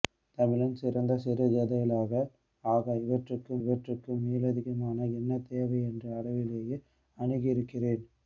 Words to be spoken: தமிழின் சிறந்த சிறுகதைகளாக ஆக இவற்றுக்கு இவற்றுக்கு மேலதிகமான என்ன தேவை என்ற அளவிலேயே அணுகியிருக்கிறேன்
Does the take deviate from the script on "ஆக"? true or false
false